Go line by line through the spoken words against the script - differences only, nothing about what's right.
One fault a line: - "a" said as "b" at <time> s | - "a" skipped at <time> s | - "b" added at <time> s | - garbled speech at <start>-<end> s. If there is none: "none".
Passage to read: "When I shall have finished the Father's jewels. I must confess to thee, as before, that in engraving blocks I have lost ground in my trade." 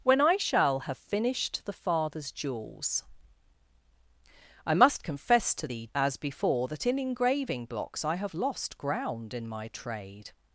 none